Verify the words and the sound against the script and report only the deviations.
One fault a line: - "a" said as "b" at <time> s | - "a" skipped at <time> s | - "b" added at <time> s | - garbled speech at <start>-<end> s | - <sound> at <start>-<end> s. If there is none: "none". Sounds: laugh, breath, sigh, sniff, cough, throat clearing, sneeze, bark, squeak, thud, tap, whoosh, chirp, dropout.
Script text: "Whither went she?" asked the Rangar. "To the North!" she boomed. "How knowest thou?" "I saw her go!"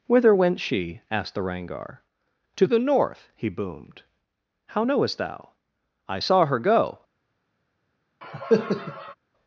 - "she" said as "he" at 3.4 s
- cough at 8.2-9.1 s